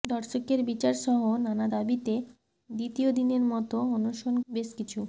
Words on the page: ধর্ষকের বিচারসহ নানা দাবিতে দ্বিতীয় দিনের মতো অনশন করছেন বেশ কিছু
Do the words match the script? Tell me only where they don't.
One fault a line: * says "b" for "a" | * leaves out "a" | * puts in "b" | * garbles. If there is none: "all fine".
* leaves out "করছেন"